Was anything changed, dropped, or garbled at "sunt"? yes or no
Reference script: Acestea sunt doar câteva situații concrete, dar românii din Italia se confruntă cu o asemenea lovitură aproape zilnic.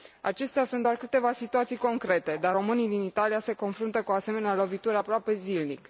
no